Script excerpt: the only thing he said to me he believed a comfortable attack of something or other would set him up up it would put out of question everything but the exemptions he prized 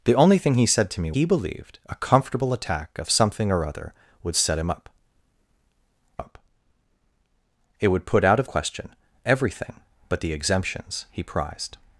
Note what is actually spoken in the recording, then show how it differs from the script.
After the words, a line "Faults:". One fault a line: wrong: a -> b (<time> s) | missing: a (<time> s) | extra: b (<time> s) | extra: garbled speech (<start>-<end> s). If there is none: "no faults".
the only thing he said to me he believed a comfortable attack of something or other would set him up up it would put out of question everything but the exemptions he prized
Faults:
no faults